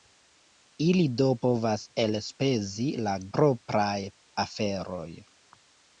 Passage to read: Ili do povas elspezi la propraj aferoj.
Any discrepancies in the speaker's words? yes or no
no